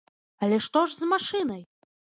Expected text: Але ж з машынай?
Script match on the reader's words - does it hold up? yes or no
no